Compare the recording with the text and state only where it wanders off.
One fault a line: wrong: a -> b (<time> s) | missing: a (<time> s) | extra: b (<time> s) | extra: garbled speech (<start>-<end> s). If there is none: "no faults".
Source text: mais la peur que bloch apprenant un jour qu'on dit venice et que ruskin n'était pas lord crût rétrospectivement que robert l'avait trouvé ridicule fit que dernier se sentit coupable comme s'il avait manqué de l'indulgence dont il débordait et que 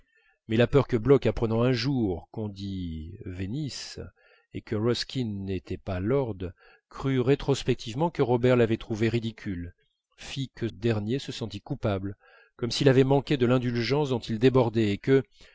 no faults